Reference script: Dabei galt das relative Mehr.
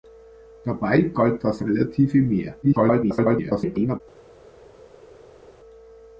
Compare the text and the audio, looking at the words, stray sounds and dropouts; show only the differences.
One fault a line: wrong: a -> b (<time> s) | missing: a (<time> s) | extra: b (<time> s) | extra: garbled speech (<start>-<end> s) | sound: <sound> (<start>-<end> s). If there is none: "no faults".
extra: garbled speech (2.6-4.0 s)